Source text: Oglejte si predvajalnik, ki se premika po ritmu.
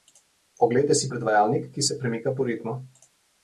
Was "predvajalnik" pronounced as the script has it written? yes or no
yes